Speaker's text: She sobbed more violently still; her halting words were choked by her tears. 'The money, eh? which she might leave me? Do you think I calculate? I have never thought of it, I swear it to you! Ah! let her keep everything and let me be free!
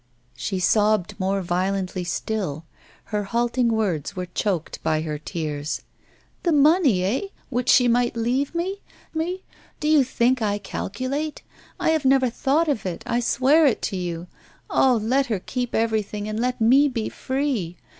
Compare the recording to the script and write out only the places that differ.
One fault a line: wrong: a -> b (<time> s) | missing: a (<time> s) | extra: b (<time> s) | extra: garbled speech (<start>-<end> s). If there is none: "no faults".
extra: me (9.2 s)